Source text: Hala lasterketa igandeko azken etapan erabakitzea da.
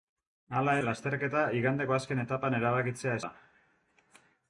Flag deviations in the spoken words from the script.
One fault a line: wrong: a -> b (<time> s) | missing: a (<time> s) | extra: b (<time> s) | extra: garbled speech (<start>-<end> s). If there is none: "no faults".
no faults